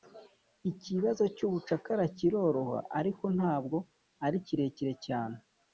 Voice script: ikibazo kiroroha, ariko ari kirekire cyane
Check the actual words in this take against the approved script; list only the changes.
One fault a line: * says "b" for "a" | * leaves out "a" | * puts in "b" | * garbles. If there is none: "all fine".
* puts in "cy'ubucakara"
* puts in "ntabwo"